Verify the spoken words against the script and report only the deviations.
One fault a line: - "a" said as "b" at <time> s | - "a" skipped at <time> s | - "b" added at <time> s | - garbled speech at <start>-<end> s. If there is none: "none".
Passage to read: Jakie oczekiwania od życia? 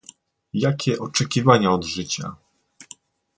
none